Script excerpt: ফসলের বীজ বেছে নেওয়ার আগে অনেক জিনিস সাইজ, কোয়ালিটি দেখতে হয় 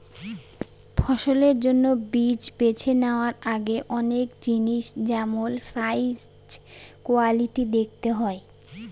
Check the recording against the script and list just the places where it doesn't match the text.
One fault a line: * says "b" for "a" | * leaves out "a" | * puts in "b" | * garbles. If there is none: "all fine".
* puts in "জন্য"
* puts in "যেমল"